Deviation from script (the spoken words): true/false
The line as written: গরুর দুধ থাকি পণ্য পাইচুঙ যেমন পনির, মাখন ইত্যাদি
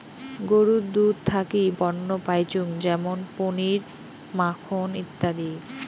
false